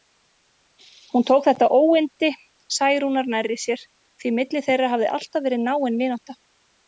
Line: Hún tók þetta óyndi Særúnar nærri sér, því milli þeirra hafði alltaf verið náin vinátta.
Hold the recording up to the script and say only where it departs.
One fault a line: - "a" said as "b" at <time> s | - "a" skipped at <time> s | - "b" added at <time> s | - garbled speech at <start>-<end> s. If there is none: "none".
none